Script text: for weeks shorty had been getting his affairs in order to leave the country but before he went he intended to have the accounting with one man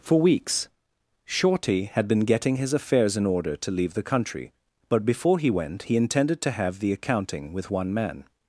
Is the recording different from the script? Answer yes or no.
no